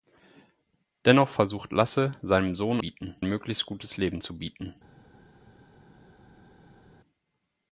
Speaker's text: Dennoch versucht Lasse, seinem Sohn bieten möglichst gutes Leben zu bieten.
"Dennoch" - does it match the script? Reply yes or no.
yes